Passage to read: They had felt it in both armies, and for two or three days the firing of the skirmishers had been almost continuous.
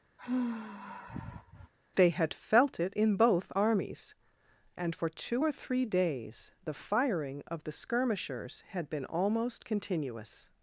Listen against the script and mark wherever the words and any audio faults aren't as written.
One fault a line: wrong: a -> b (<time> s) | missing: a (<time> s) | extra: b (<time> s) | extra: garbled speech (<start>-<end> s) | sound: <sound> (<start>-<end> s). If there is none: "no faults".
sound: sigh (0.2-1.7 s)